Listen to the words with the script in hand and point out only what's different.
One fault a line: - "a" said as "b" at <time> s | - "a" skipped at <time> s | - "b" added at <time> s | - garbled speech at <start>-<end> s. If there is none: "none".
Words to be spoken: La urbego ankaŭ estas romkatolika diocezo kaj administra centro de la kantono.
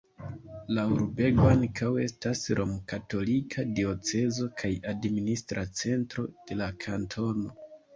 none